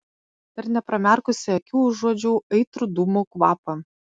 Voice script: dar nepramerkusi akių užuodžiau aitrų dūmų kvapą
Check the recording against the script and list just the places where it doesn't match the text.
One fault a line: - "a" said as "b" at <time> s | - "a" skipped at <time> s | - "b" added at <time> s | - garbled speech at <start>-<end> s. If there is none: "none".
none